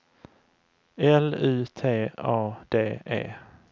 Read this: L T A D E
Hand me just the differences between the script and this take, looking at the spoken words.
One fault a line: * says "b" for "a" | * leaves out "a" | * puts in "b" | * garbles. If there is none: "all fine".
* puts in "U"